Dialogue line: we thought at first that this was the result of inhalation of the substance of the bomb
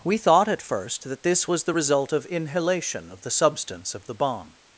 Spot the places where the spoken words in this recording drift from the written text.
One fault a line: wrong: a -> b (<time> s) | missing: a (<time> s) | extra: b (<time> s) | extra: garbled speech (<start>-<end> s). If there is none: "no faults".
no faults